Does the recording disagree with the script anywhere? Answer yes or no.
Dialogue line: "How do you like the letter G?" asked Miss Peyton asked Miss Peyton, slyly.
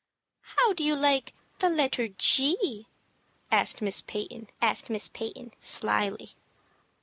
no